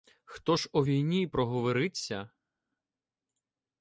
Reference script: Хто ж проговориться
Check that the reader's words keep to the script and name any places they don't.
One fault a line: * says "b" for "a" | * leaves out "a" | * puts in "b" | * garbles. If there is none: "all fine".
* puts in "о війні"